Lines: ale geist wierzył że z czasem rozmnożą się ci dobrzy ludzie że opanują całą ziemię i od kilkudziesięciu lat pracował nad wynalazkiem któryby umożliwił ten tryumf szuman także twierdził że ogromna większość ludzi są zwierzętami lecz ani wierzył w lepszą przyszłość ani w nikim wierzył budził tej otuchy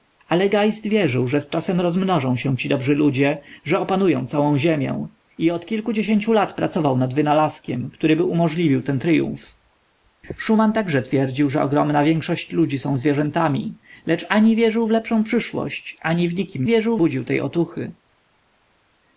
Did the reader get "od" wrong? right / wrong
right